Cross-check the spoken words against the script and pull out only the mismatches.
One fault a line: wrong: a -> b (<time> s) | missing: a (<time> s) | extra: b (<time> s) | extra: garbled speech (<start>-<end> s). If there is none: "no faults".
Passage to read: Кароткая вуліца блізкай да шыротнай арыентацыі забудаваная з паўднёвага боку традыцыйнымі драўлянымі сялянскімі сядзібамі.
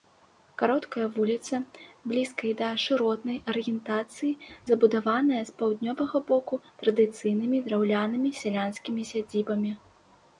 no faults